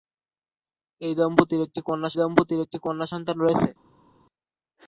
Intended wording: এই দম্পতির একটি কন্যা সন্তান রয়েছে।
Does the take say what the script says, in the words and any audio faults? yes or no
no